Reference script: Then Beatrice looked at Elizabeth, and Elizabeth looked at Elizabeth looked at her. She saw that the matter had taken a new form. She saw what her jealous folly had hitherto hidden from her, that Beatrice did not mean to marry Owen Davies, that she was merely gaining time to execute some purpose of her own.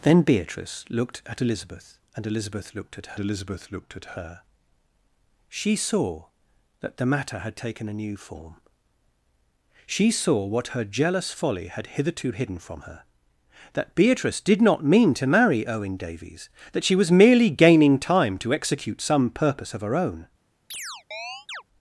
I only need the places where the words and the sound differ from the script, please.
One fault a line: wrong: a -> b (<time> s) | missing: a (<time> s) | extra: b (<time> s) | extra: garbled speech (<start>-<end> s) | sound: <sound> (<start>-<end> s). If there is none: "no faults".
sound: chirp (20.7-21.6 s)